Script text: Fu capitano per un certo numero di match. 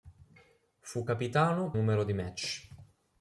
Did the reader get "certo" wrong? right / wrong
wrong